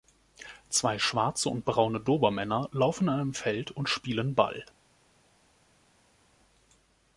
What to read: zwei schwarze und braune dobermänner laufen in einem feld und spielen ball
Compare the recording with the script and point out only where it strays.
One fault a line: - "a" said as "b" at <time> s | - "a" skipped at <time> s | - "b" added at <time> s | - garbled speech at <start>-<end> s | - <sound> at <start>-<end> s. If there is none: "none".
none